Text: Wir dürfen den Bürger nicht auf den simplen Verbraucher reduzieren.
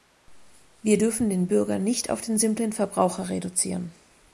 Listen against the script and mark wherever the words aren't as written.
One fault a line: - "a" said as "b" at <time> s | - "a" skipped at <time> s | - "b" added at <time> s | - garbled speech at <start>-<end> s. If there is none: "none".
none